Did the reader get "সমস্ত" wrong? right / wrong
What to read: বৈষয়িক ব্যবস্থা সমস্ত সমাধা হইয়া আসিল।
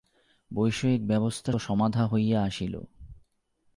wrong